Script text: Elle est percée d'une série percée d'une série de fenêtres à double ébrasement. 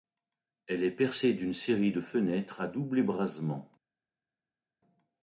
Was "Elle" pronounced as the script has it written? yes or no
yes